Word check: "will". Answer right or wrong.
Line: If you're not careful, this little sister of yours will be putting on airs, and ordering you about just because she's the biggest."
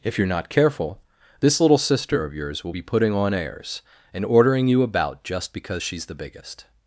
right